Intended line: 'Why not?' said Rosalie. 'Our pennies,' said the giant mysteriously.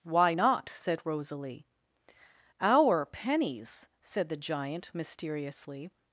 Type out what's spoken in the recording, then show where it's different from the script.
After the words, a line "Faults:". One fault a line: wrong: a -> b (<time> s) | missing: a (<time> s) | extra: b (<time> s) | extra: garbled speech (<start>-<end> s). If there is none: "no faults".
'Why not?' said Rosalie. 'Our pennies,' said the giant mysteriously.
Faults:
no faults